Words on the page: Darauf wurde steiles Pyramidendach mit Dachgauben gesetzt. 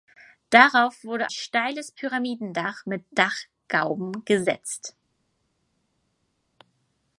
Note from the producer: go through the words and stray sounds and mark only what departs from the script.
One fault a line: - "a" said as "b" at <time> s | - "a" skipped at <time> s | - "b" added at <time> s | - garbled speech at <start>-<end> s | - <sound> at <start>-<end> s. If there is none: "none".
none